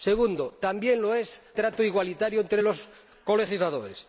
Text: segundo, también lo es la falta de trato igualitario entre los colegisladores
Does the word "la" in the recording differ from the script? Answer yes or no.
yes